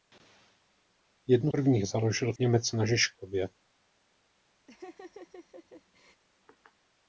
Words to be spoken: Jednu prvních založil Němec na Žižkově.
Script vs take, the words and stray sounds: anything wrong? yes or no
yes